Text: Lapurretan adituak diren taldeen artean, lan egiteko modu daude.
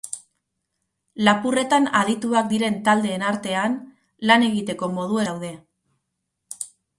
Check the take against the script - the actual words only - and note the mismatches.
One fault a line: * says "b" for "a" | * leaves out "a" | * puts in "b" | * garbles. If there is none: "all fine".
all fine